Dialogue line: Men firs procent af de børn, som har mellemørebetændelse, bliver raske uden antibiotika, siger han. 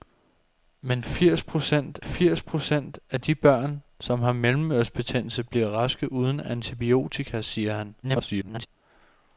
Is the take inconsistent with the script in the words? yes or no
yes